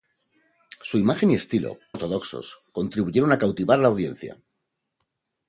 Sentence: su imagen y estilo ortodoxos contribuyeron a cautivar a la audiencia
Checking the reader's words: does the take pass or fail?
pass